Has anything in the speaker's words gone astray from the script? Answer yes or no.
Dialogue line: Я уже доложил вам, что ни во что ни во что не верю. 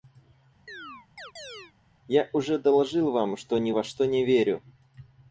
yes